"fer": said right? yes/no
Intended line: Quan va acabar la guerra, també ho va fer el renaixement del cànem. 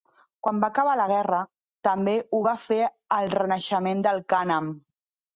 yes